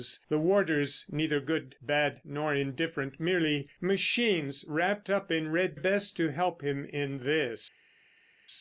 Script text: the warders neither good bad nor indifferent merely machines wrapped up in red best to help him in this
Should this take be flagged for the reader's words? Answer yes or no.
no